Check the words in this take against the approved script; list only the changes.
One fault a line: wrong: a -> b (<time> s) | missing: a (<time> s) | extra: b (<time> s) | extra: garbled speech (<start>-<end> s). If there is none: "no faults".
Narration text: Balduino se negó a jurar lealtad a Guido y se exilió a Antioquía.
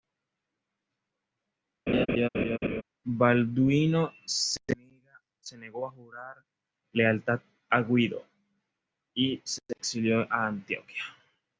no faults